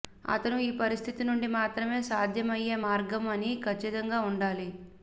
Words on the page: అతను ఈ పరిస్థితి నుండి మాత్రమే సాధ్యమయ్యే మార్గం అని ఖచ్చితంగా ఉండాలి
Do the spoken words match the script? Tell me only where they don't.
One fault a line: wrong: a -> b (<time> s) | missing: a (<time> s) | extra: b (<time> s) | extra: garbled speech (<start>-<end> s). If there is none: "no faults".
no faults